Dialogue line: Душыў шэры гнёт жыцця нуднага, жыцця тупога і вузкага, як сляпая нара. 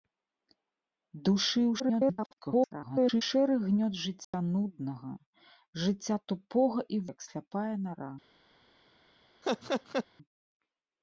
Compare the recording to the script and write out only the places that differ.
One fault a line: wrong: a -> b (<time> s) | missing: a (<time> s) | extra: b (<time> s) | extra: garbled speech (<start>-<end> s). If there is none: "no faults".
extra: garbled speech (1.8-3.2 s)
missing: вузкага (7.0 s)